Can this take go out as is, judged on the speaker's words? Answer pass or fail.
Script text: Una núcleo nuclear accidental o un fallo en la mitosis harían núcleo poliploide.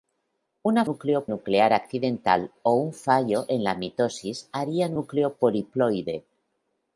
pass